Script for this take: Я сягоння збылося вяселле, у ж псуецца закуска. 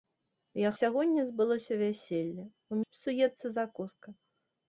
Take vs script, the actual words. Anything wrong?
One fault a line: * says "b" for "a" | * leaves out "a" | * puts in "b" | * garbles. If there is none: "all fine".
all fine